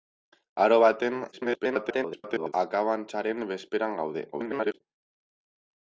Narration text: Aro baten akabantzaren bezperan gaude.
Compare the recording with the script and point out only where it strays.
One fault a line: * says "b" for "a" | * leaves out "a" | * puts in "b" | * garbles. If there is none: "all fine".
* garbles
* garbles